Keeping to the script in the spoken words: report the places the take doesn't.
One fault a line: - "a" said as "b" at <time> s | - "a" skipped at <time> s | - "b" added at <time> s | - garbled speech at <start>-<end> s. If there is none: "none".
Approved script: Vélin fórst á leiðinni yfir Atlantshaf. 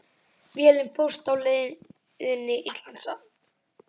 - "yfir" skipped at 2.6 s